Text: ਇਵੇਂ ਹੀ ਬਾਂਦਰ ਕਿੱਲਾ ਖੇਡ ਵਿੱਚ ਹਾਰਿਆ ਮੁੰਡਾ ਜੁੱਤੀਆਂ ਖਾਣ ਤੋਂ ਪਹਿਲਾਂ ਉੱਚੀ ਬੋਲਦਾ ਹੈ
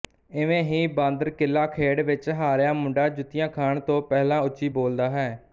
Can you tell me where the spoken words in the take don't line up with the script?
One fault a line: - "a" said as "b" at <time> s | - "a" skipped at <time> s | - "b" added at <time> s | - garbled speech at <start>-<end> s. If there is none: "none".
none